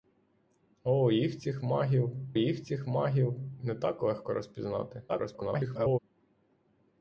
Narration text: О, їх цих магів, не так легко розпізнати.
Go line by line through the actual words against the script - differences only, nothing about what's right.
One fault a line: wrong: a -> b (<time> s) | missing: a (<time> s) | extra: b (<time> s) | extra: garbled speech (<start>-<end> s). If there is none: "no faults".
extra: їх цих магів (2.4 s)
extra: garbled speech (5.1-6.0 s)